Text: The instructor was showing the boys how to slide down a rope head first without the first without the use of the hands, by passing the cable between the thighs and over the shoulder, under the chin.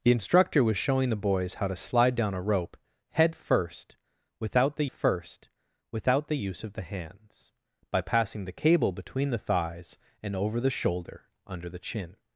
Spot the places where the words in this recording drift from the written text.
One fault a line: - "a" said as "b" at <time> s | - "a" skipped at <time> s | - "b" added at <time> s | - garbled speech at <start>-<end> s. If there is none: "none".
none